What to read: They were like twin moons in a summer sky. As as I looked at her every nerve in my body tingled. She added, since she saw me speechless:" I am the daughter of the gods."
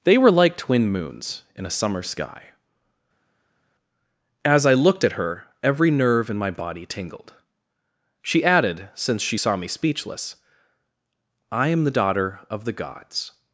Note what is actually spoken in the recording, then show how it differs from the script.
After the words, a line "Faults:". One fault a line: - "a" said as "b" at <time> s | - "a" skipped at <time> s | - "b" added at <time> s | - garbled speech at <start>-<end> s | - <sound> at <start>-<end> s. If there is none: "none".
They were like twin moons in a summer sky. As I looked at her every nerve in my body tingled. She added, since she saw me speechless:" I am the daughter of the gods."
Faults:
- "as" skipped at 4.6 s